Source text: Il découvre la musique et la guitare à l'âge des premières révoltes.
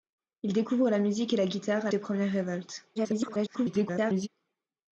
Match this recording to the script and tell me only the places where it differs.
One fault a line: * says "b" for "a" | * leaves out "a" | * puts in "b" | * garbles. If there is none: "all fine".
* leaves out "l'âge"
* garbles